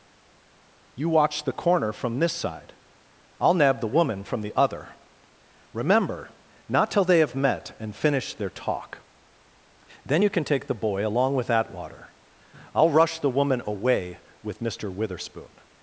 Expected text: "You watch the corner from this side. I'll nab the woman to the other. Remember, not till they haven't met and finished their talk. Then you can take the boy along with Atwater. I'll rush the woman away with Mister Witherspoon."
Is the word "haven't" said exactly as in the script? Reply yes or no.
no